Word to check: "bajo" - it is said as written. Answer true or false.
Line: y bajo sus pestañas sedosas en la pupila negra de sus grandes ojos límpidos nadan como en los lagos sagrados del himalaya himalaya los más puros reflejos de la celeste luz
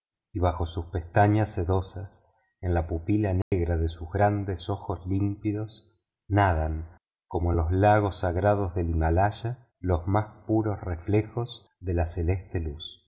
true